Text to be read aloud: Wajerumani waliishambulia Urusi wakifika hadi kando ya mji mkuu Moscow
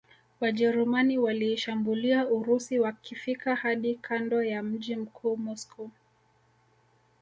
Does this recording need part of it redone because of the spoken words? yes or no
no